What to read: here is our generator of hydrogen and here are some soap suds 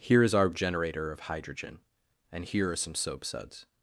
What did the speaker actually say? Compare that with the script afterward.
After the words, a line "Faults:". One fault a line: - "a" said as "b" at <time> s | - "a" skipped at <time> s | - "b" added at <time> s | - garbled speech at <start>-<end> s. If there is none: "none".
here is our generator of hydrogen and here are some soap suds
Faults:
none